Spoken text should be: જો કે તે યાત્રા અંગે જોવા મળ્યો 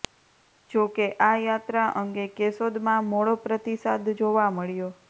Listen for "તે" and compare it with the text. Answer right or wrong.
wrong